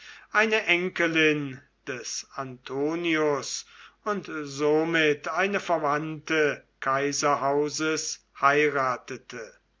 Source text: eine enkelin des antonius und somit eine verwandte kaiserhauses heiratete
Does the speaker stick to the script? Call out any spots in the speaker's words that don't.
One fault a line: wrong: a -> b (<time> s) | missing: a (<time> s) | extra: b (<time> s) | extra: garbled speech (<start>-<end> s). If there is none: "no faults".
no faults